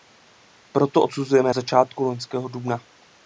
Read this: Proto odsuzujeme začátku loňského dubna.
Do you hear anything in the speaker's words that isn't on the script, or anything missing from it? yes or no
no